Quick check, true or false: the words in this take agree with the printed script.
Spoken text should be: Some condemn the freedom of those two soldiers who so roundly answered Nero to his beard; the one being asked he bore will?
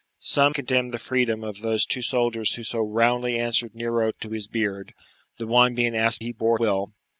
true